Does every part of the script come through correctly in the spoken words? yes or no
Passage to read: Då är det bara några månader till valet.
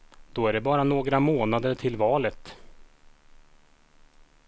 yes